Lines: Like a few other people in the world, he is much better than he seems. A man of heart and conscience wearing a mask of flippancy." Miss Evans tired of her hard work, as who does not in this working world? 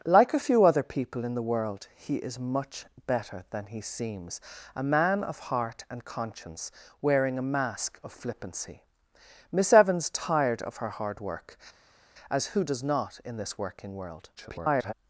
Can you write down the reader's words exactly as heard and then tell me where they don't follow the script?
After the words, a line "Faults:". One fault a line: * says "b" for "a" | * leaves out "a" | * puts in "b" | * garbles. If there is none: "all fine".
Like a few other people in the world, he is much better than he seems. A man of heart and conscience wearing a mask of flippancy." Miss Evans tired of her hard work, as who does not in this working world? [garbled]
Faults:
* garbles